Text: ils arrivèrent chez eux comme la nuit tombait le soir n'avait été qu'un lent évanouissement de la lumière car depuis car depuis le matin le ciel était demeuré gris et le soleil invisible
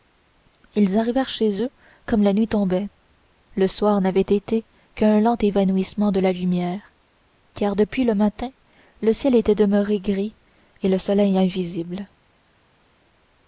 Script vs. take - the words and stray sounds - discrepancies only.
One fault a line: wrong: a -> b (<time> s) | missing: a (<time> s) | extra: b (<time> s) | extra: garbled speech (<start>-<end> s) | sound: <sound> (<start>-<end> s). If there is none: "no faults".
missing: car depuis (8.0 s)